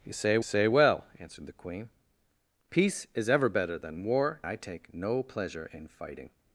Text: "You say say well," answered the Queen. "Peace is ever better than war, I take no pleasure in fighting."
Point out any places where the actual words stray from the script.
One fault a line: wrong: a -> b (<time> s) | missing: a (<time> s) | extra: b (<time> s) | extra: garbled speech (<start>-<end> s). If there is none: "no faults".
no faults